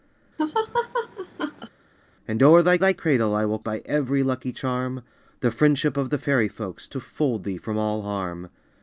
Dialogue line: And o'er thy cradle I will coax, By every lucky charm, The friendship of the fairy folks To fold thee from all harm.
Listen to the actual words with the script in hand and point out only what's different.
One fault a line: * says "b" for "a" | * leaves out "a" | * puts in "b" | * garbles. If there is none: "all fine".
* puts in "thy"
* leaves out "coax"